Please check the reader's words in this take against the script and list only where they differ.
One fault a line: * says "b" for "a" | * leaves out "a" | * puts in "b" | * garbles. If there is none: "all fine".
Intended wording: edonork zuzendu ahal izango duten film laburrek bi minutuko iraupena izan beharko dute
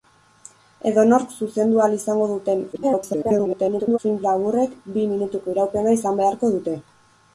* garbles